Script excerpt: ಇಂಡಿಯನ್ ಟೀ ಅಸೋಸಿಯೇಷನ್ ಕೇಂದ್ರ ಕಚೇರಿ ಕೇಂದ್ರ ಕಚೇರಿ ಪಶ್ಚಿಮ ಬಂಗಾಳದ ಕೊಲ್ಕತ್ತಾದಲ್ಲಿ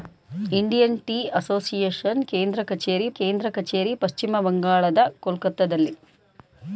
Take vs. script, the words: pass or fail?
pass